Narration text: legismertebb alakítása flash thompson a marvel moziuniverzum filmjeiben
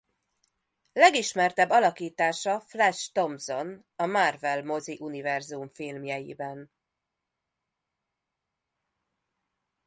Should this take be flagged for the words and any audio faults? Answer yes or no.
no